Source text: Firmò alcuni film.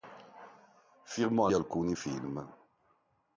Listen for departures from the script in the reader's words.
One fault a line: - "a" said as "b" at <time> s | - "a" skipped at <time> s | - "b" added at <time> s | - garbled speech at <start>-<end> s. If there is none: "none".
none